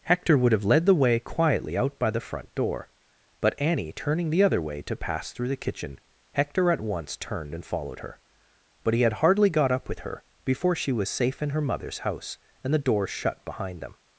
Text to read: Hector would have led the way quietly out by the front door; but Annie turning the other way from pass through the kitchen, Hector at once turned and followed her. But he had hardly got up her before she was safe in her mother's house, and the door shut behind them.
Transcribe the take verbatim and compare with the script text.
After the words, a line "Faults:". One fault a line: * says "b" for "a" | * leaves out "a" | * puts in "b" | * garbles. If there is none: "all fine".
Hector would have led the way quietly out by the front door; but Annie turning the other way to pass through the kitchen, Hector at once turned and followed her. But he had hardly got up with her before she was safe in her mother's house, and the door shut behind them.
Faults:
* says "to" for "from"
* puts in "with"